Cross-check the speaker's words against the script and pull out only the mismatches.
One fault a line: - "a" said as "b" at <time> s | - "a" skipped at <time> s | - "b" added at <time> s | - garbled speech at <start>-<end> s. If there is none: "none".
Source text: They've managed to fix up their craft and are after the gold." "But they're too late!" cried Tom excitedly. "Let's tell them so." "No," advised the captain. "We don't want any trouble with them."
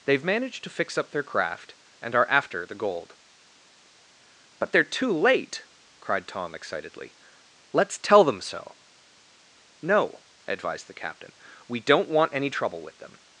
none